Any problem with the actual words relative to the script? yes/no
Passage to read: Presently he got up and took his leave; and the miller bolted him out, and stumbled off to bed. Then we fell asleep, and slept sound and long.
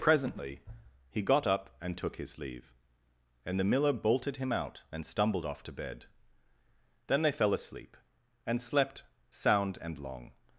yes